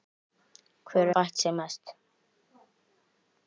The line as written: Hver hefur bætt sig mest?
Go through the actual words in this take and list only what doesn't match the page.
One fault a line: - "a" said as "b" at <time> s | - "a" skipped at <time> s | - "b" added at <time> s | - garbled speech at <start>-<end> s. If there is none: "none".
- "hefur" skipped at 1.1 s